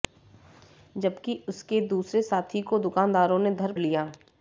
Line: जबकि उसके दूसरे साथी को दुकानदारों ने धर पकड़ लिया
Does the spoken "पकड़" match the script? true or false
false